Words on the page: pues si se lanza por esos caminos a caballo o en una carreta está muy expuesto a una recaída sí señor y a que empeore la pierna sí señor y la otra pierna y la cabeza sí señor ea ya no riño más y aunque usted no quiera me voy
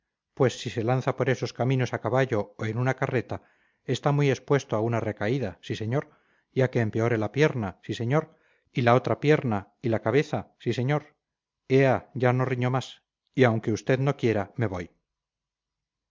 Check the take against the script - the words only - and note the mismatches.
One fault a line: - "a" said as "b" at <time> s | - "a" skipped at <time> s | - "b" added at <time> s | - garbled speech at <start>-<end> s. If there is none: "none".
none